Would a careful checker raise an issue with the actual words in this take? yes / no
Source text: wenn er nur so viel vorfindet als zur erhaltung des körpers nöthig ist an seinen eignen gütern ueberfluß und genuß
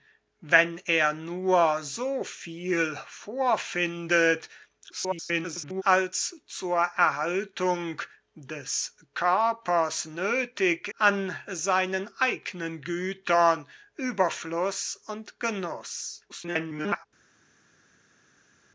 yes